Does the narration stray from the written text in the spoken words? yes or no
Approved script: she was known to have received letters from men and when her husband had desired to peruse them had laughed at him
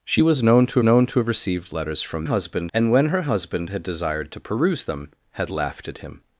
yes